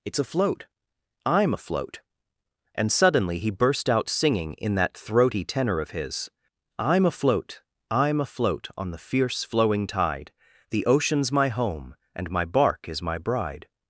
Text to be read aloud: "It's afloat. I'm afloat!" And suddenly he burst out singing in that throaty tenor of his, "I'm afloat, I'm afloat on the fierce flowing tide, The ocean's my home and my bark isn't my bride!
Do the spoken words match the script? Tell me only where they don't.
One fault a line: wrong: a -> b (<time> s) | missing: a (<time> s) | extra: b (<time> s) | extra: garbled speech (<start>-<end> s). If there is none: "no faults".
wrong: isn't -> is (12.9 s)